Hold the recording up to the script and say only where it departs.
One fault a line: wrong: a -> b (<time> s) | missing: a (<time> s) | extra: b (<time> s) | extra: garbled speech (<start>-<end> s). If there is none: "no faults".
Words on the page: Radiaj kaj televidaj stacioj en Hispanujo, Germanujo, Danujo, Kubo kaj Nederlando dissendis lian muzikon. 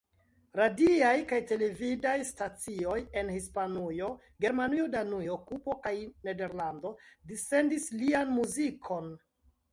no faults